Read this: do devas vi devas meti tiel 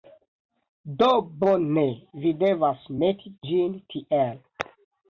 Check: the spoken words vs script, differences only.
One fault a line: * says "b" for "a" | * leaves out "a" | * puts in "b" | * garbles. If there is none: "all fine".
* says "bone" for "devas"
* puts in "ĝin"